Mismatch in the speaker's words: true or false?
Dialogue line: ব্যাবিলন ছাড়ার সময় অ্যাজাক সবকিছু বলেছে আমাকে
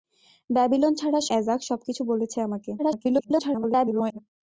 true